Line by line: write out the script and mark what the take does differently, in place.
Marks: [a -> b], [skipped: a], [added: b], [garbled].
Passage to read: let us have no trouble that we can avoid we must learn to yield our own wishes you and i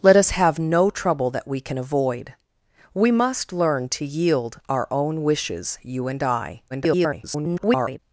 let us have no trouble that we can avoid we must learn to yield our own wishes you and i [garbled]